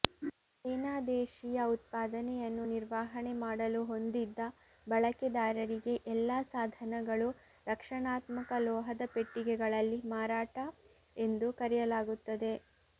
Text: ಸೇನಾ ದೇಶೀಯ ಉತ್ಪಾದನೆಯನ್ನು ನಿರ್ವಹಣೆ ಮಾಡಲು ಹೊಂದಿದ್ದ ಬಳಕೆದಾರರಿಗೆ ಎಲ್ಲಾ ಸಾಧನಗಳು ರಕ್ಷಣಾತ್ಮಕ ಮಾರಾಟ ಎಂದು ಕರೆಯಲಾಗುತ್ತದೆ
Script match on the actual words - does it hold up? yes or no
no